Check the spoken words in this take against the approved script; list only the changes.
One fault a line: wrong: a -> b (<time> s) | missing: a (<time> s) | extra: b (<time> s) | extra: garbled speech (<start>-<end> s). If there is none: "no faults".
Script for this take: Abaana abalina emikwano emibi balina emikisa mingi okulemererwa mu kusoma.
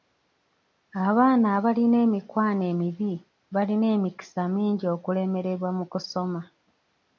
no faults